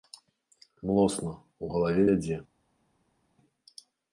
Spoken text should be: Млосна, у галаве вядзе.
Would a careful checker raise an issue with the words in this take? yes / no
no